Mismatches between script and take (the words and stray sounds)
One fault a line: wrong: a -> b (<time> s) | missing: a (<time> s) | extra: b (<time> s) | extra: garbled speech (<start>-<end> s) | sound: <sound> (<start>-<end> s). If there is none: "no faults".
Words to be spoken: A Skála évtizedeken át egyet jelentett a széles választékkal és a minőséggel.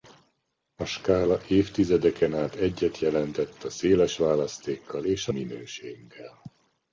no faults